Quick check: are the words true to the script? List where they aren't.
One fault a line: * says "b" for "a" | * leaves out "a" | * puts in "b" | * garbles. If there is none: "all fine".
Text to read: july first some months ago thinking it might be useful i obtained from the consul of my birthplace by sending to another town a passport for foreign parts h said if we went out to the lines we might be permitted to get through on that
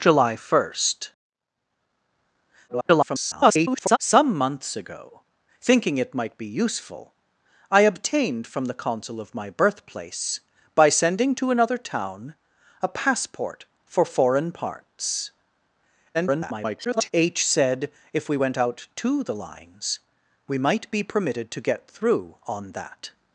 * garbles
* garbles